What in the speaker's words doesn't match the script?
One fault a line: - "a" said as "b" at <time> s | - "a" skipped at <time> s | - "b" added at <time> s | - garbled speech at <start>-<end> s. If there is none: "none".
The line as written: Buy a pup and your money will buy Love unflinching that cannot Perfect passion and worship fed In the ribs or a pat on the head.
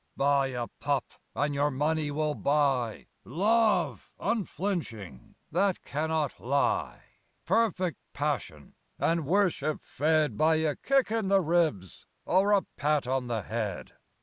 - "lie" added at 6.4 s
- "By a kick" added at 10.4 s